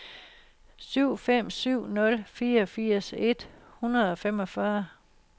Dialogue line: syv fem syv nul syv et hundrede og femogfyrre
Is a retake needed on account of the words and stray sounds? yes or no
yes